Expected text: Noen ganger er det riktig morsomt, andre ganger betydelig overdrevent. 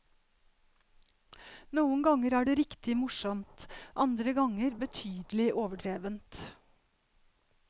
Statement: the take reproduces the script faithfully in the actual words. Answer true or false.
true